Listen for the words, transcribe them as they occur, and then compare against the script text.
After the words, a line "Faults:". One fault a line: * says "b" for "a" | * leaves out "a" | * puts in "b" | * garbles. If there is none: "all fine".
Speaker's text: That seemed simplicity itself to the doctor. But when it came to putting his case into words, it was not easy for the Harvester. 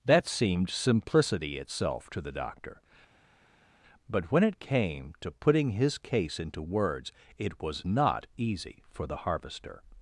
That seemed simplicity itself to the doctor. But when it came to putting his case into words, it was not easy for the Harvester.
Faults:
all fine